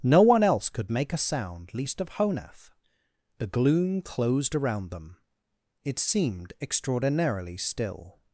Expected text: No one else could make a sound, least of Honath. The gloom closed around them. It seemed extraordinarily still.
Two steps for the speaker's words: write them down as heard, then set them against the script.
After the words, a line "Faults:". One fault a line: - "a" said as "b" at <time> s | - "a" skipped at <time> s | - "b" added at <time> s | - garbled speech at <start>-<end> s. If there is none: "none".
No one else could make a sound, least of Honath. The gloom closed around them. It seemed extraordinarily still.
Faults:
none